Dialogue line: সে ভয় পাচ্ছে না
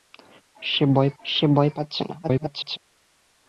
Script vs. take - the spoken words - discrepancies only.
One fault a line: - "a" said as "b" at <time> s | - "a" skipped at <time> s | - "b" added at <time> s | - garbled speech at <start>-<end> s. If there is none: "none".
- "সে ভয়" added at 1.2 s
- garbled speech at 2.2-2.8 s